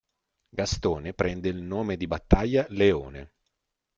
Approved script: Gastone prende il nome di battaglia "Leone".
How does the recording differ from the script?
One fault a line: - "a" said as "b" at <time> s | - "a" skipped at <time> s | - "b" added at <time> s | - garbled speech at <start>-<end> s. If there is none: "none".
none